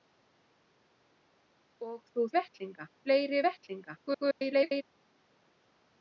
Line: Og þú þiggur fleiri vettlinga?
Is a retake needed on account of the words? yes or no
yes